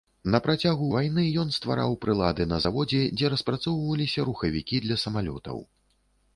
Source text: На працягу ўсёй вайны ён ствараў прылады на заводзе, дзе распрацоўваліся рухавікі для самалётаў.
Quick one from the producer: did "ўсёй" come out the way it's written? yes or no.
no